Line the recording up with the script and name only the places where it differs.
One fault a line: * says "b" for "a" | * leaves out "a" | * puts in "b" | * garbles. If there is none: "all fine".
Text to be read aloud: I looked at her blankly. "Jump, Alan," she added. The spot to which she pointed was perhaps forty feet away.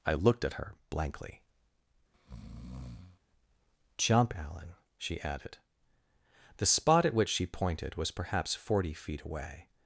* says "at" for "to"